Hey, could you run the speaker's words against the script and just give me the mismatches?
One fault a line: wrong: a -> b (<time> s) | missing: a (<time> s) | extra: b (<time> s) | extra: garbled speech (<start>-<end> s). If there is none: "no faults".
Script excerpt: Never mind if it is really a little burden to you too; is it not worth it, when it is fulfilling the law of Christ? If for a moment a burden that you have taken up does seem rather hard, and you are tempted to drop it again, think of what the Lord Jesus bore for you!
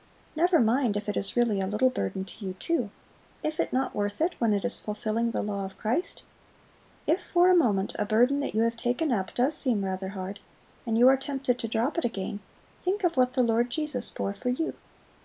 no faults